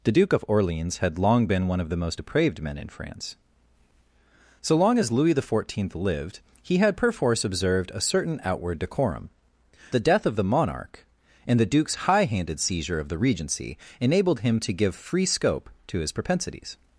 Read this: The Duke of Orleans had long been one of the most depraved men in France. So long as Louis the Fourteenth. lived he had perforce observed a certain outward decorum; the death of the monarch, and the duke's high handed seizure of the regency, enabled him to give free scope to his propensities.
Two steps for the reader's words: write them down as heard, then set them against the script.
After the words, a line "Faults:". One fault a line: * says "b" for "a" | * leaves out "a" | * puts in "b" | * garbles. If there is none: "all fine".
The Duke of Orleans had long been one of the most depraved men in France. So long as Louis the Fourteenth. lived he had perforce observed a certain outward decorum; the death of the monarch, and the duke's high handed seizure of the regency, enabled him to give free scope to his propensities.
Faults:
all fine